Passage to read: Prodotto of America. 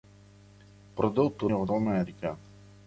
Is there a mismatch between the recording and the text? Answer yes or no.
no